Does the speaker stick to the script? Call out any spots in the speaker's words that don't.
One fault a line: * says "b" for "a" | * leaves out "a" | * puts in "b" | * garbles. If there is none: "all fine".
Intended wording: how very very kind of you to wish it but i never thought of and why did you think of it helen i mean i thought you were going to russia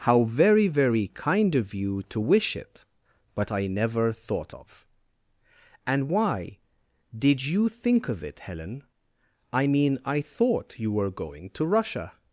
all fine